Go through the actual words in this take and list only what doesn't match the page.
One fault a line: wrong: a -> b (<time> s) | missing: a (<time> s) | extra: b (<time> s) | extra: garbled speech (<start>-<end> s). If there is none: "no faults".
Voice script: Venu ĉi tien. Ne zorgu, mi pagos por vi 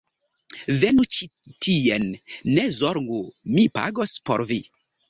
no faults